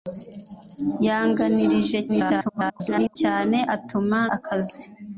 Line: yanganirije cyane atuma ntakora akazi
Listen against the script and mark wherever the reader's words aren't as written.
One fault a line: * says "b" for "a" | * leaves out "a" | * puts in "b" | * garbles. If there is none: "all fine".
* garbles
* leaves out "ntakora"